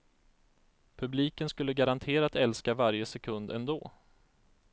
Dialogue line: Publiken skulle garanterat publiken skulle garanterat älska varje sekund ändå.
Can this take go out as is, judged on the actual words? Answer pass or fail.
fail